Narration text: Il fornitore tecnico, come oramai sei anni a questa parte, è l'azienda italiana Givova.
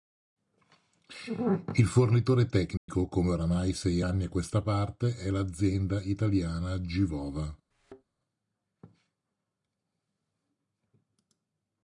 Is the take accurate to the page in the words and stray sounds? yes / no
no